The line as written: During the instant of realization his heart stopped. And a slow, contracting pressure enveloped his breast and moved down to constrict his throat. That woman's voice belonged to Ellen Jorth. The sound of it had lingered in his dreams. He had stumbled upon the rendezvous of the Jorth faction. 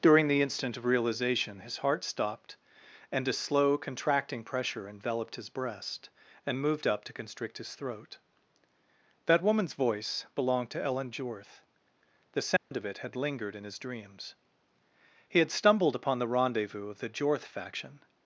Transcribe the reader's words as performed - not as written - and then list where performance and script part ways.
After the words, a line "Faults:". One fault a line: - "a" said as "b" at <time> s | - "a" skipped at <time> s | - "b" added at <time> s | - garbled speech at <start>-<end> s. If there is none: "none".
During the instant of realization his heart stopped. And a slow, contracting pressure enveloped his breast and moved up to constrict his throat. That woman's voice belonged to Ellen Jorth. The sound of it had lingered in his dreams. He had stumbled upon the rendezvous of the Jorth faction.
Faults:
- "down" said as "up" at 6.9 s